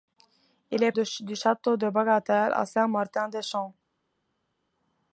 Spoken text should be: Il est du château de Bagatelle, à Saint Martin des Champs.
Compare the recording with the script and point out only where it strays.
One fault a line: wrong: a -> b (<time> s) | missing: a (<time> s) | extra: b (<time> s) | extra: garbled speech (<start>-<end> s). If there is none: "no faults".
no faults